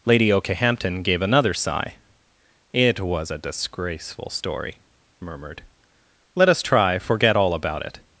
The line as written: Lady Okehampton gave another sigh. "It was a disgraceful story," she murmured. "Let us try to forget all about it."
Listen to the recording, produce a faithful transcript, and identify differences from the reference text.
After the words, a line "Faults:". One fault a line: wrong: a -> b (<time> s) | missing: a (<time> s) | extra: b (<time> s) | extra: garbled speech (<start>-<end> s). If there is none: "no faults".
Lady Okehampton gave another sigh. "It was a disgraceful story," murmured. "Let us try forget all about it."
Faults:
missing: she (4.8 s)
missing: to (7.0 s)